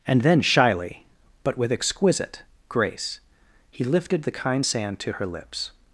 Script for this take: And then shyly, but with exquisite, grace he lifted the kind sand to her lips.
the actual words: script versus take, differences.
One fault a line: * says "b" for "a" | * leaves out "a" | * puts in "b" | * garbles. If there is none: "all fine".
all fine